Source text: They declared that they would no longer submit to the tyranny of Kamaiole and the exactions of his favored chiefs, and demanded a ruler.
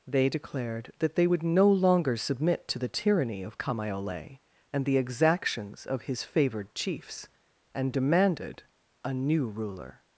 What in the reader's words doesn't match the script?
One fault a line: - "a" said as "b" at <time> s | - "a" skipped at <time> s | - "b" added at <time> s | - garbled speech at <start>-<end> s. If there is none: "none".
- "new" added at 9.1 s